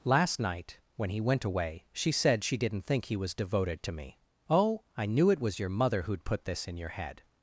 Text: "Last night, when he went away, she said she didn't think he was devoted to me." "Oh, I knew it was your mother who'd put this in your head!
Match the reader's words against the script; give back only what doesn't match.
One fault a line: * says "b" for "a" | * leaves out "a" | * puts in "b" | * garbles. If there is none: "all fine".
all fine